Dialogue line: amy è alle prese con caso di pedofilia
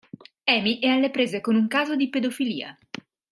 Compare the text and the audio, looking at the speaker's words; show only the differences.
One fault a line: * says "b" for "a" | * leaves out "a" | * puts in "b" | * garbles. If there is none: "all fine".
* puts in "un"